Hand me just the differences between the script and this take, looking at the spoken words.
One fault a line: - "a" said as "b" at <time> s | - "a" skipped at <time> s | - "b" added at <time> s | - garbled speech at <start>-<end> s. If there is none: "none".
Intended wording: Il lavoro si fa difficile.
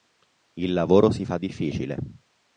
none